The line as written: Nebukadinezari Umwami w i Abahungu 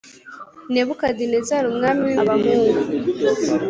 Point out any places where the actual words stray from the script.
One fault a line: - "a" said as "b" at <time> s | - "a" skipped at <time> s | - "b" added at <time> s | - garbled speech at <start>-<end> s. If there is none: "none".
none